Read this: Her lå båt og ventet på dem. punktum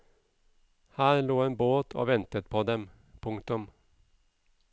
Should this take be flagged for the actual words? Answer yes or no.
yes